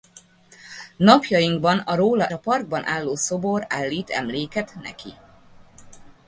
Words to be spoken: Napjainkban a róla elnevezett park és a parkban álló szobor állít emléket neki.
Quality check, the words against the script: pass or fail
fail